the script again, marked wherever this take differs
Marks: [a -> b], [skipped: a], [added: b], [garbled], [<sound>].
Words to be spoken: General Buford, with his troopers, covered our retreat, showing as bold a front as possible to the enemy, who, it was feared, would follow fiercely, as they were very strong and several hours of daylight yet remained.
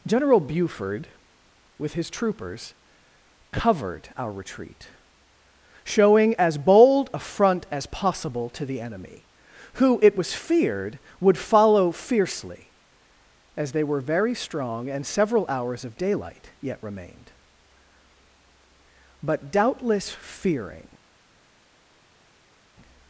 General Buford, with his troopers, covered our retreat, showing as bold a front as possible to the enemy, who, it was feared, would follow fiercely, as they were very strong and several hours of daylight yet remained. [added: But doubtless fearing]